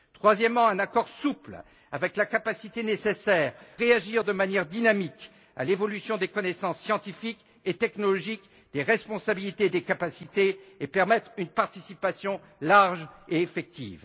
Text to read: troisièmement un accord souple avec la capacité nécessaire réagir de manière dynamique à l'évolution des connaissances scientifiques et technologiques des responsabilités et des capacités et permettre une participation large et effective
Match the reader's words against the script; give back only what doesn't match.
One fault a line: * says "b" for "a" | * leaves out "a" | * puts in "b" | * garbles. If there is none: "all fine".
all fine